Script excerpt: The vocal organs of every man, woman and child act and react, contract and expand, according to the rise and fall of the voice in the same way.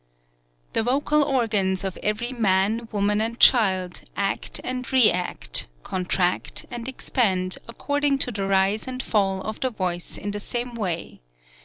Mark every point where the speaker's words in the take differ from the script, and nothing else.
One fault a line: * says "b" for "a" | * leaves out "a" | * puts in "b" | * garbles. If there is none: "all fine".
all fine